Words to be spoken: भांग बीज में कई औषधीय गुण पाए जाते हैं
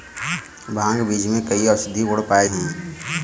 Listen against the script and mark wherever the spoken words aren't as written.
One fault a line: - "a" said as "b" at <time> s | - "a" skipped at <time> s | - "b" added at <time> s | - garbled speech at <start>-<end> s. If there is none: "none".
- "जाते" skipped at 2.5 s